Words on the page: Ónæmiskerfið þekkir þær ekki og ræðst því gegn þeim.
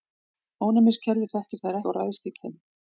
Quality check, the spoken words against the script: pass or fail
fail